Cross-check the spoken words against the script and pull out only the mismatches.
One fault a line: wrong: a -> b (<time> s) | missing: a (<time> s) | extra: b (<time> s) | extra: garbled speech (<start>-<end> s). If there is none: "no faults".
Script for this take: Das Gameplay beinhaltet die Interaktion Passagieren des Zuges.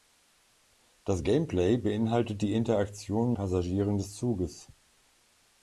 no faults